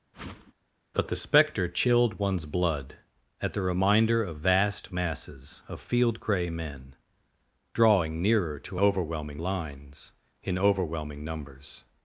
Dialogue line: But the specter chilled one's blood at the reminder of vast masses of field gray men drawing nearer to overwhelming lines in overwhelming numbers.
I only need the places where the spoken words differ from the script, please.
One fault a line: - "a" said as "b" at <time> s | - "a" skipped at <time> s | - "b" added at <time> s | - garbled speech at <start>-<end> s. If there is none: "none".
none